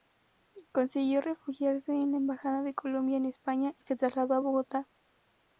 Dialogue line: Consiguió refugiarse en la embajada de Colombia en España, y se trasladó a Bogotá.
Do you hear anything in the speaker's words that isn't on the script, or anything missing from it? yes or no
no